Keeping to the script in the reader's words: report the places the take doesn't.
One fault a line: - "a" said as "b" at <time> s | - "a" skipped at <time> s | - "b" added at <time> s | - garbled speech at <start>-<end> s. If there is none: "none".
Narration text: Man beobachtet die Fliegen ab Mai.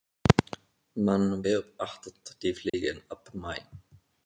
none